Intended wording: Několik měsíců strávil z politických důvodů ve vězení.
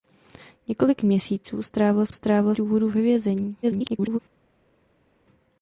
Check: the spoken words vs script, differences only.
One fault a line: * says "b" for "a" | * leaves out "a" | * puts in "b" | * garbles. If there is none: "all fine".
* says "strávil" for "politických"
* garbles